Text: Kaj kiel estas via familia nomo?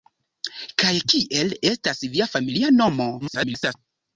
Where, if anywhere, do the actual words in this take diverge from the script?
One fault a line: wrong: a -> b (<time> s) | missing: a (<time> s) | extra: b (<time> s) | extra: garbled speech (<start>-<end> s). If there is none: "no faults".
extra: garbled speech (3.2-3.8 s)